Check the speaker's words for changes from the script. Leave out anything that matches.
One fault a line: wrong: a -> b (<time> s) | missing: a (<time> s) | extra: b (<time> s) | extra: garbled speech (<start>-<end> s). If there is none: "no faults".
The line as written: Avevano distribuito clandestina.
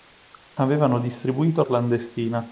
no faults